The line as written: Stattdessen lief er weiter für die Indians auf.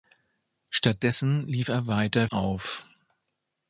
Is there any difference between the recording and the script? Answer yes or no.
yes